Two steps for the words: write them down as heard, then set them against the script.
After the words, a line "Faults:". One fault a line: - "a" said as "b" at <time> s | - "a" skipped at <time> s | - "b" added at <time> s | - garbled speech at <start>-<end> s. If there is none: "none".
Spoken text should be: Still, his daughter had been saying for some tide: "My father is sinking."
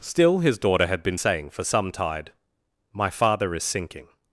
Still, his daughter had been saying for some tide: "My father is sinking."
Faults:
none